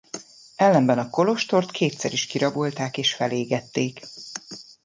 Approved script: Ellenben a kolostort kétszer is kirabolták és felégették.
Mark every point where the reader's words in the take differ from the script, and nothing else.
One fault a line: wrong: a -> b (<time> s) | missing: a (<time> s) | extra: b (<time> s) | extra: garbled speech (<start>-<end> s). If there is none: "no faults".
no faults